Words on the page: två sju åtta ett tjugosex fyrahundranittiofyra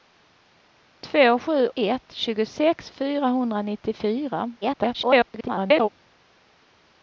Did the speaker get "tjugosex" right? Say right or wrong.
right